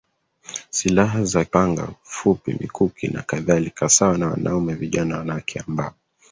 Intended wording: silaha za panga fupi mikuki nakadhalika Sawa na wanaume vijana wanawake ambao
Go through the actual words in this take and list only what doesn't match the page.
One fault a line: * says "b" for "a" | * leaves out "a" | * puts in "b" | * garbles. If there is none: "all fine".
all fine